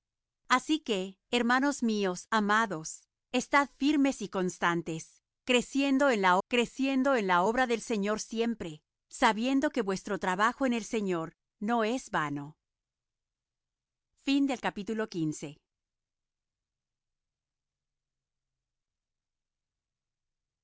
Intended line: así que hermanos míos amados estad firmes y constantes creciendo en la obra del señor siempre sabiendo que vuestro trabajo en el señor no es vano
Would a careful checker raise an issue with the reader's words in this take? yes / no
yes